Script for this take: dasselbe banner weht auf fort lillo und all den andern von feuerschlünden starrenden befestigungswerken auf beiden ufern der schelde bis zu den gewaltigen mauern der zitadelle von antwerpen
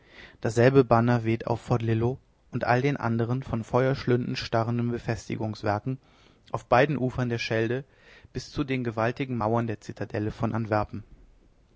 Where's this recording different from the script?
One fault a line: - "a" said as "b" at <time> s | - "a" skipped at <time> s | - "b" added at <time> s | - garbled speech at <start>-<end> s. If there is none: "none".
none